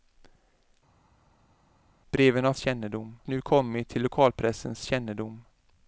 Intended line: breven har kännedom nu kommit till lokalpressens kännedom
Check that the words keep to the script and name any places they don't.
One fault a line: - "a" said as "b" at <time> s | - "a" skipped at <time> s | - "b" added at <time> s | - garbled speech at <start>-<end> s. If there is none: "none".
none